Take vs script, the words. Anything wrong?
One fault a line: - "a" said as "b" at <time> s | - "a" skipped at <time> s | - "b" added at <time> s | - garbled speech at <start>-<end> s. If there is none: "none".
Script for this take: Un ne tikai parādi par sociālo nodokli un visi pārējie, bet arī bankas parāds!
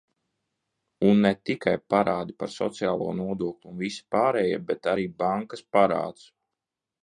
none